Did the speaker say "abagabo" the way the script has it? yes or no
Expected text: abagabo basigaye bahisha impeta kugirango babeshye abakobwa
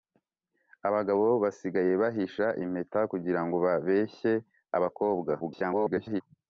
yes